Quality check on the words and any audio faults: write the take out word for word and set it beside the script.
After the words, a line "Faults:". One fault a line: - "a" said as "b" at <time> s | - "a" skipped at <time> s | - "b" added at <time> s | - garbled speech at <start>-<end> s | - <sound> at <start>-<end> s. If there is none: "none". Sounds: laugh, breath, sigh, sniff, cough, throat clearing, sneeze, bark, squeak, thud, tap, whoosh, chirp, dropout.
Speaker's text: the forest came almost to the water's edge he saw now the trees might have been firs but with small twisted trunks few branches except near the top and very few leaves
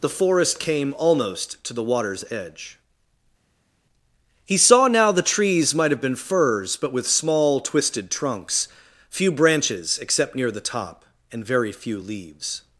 the forest came almost to the water's edge he saw now the trees might have been firs but with small twisted trunks few branches except near the top and very few leaves
Faults:
none